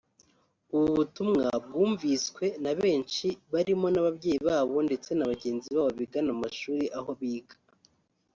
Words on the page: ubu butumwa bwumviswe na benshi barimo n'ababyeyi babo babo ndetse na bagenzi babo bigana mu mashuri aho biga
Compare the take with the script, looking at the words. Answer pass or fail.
fail